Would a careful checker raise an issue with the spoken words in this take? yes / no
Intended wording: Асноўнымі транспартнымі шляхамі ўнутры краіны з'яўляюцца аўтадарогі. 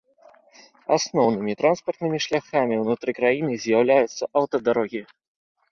no